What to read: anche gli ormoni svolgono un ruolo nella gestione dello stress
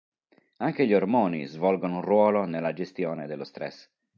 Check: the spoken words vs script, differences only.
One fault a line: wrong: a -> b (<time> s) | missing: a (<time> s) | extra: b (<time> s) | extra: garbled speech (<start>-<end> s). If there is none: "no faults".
no faults